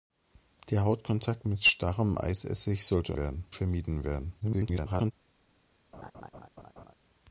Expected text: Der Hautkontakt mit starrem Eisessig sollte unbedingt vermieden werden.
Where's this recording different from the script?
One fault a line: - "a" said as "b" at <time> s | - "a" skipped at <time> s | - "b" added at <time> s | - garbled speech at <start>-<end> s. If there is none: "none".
- "unbedingt" said as "werden" at 3.1 s
- garbled speech at 4.4-5.1 s